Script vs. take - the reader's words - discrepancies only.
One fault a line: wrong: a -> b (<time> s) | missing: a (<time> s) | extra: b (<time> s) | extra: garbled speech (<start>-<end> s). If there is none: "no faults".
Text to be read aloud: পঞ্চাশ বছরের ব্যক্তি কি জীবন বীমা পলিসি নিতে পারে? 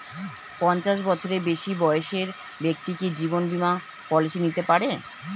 extra: বেশি বয়সের (1.4 s)